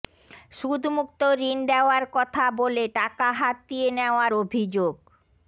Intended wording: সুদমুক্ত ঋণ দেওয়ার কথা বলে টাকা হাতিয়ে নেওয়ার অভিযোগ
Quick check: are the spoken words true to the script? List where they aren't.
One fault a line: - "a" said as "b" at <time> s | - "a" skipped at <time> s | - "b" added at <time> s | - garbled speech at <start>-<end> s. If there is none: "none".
none